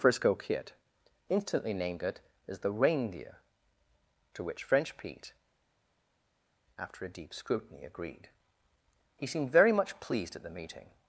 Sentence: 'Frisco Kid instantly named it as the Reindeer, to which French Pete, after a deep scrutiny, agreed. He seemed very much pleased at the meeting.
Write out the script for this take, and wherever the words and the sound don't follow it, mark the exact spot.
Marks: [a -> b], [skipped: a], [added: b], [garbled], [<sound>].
'Frisco Kid instantly named it as the Reindeer, to which French Pete, after a deep scrutiny, agreed. He seemed very much pleased at the meeting.